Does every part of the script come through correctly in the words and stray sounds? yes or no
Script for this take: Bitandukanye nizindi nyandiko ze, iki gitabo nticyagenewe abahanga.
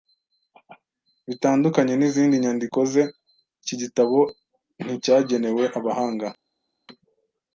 yes